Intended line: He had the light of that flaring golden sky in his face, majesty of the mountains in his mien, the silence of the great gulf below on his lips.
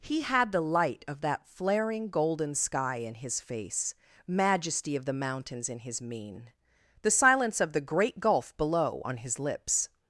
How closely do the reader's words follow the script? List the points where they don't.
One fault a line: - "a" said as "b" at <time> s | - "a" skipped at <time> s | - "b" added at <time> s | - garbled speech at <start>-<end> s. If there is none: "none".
none